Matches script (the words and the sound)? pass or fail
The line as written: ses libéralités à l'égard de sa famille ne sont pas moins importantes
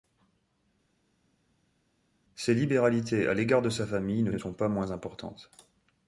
fail